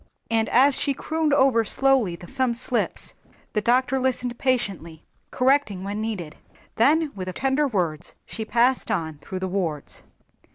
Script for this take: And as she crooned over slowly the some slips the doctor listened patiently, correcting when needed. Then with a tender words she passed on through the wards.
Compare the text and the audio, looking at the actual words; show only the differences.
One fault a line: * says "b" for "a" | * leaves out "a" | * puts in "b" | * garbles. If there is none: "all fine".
all fine